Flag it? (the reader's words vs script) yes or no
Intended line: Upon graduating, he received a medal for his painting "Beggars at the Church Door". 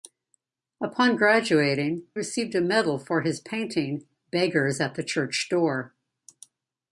yes